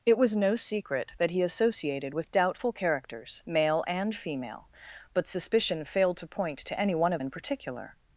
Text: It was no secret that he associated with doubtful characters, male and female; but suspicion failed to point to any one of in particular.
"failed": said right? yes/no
yes